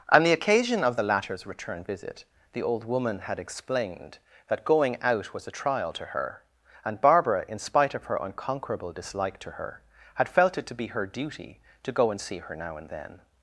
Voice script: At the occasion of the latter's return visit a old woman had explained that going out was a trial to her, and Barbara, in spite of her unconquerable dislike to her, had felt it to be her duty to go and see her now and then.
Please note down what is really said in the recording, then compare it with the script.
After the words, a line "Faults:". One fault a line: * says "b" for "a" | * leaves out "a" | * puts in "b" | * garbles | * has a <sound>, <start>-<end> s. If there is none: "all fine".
On the occasion of the latter's return visit the old woman had explained that going out was a trial to her, and Barbara, in spite of her unconquerable dislike to her, had felt it to be her duty to go and see her now and then.
Faults:
* says "On" for "At"
* says "the" for "a"